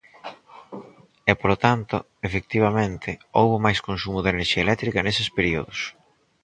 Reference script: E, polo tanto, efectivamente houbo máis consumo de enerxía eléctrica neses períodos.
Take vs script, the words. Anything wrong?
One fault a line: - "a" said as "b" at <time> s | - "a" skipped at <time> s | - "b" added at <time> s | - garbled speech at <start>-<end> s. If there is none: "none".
none